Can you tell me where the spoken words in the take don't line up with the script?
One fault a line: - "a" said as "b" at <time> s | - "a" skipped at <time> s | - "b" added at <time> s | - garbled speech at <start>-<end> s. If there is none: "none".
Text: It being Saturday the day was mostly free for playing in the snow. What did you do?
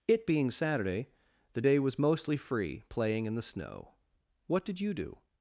- "for" skipped at 2.8 s